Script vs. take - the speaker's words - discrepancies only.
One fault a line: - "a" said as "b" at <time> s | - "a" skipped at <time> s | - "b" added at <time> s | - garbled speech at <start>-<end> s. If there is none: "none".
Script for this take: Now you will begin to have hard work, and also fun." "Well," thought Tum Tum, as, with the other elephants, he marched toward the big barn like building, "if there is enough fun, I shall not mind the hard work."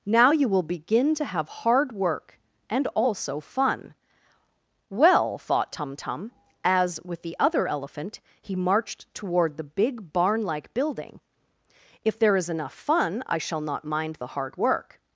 - "elephants" said as "elephant" at 7.7 s